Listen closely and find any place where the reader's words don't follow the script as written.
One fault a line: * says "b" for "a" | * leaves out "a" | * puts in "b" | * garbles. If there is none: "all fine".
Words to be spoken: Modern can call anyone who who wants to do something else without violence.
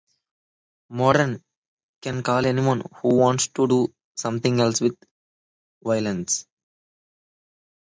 * leaves out "who"
* says "with" for "without"